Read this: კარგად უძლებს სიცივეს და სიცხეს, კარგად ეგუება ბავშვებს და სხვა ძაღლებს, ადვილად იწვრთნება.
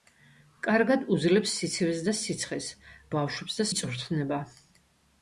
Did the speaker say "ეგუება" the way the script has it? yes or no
no